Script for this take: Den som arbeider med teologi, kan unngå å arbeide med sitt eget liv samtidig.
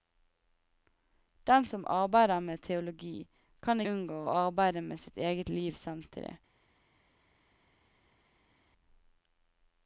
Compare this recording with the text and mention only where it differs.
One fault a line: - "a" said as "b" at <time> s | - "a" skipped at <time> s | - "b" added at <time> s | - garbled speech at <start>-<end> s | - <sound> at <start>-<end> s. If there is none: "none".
none